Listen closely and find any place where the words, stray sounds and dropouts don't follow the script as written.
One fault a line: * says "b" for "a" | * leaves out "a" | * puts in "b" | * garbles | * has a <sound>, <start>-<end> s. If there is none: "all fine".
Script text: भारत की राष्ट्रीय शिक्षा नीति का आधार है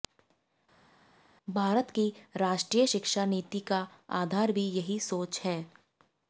* puts in "भी यही सोच"